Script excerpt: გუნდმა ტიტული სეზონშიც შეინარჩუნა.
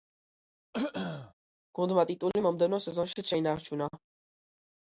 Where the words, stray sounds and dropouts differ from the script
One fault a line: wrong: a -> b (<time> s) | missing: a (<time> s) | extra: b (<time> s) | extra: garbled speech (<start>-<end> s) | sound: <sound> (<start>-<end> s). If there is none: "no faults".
sound: throat clearing (0.7-1.3 s)
extra: მომდევნო (2.5 s)